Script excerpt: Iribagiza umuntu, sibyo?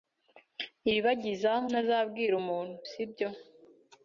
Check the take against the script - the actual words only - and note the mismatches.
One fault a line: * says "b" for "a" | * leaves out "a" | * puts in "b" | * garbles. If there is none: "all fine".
* puts in "ntazabwira"